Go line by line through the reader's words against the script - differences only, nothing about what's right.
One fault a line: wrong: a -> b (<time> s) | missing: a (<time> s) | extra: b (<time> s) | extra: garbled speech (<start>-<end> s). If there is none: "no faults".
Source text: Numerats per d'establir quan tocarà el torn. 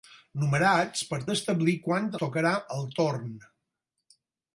no faults